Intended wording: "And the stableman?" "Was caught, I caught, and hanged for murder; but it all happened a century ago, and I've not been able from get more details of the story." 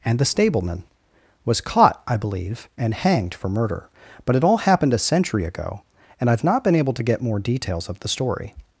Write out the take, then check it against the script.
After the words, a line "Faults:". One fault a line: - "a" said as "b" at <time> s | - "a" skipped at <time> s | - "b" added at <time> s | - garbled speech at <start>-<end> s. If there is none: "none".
"And the stableman?" "Was caught, I believe, and hanged for murder; but it all happened a century ago, and I've not been able to get more details of the story."
Faults:
- "caught" said as "believe" at 2.2 s
- "from" said as "to" at 6.9 s